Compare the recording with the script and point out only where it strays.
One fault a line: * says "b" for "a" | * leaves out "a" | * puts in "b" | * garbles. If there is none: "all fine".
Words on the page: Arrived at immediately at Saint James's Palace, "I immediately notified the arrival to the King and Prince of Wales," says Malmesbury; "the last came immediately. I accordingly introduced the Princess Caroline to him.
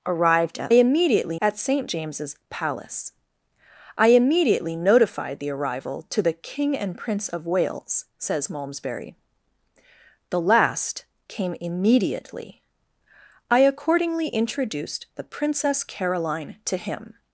all fine